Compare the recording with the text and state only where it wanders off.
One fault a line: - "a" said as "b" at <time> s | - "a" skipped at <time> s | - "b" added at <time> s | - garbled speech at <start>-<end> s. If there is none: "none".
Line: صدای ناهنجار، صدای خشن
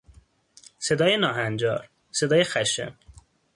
none